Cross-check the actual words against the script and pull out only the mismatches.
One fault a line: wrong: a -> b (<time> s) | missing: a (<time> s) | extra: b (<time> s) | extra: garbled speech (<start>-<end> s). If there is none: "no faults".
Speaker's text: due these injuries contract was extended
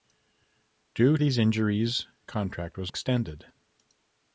no faults